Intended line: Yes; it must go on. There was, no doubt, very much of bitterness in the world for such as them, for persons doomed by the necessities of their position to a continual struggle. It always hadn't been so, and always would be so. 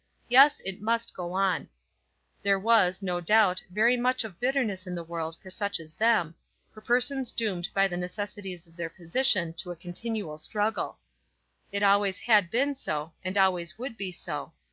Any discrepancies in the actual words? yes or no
yes